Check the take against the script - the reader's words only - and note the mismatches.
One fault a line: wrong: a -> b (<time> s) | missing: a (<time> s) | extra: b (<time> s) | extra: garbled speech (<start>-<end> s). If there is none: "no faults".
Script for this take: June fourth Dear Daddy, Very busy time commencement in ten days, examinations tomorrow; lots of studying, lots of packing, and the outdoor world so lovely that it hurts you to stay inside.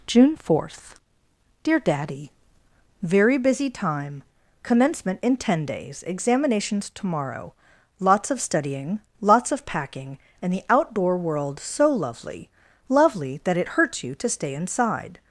extra: lovely (12.9 s)